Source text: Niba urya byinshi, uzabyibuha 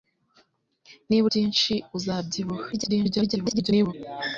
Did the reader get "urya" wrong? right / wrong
wrong